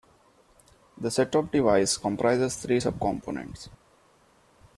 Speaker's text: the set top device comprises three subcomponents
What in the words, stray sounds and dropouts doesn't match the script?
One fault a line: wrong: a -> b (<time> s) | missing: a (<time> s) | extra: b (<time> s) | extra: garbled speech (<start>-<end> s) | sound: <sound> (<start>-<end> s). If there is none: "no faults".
no faults